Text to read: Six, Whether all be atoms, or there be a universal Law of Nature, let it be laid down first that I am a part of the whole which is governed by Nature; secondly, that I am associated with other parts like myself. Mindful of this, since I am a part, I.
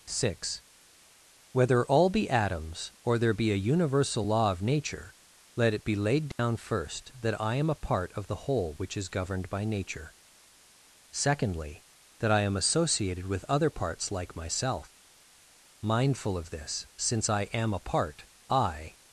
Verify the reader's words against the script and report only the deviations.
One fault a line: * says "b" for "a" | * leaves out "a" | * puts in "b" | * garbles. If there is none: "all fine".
all fine